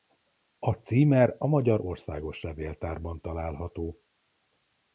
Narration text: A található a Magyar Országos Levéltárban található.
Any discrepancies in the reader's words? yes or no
yes